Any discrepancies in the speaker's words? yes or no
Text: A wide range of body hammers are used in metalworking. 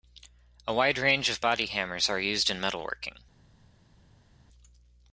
no